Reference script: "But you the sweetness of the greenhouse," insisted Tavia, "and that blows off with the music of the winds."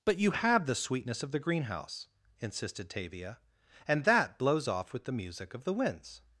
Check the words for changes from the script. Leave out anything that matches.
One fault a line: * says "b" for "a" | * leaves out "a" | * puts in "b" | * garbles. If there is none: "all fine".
* puts in "have"